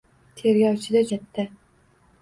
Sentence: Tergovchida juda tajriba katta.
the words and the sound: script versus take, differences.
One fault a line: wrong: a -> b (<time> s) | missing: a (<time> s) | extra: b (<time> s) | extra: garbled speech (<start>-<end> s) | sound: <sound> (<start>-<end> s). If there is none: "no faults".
missing: juda tajriba (1.0 s)